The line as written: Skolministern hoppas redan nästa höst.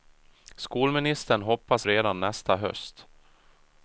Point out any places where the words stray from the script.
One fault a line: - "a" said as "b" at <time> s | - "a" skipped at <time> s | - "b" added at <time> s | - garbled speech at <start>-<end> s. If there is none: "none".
none